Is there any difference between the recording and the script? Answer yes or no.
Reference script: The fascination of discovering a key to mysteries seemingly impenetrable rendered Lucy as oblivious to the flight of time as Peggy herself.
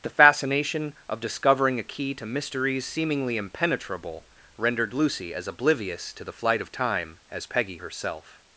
no